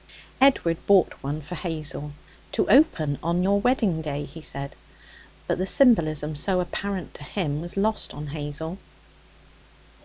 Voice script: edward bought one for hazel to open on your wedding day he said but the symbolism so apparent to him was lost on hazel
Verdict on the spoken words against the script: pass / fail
pass